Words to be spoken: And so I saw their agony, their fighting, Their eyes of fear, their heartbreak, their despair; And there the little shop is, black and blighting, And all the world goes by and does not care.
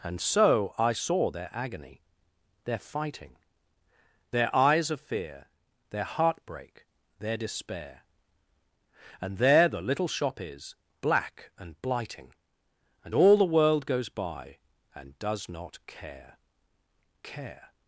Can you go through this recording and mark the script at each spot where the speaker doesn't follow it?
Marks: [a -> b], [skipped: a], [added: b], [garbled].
And so I saw their agony, their fighting, Their eyes of fear, their heartbreak, their despair; And there the little shop is, black and blighting, And all the world goes by and does not care. [added: care]